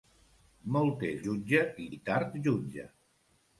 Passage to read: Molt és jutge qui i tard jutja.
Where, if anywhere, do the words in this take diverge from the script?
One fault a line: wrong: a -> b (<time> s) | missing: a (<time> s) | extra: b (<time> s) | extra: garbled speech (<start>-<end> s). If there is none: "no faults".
no faults